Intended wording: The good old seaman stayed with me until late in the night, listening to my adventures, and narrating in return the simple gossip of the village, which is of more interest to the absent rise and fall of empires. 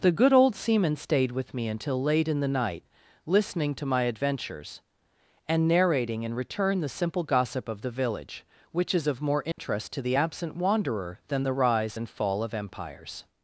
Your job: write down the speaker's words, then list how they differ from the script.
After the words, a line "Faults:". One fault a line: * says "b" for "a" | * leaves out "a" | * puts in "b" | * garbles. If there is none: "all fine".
The good old seaman stayed with me until late in the night, listening to my adventures, and narrating in return the simple gossip of the village, which is of more interest to the absent wanderer than the rise and fall of empires.
Faults:
* puts in "wanderer than the"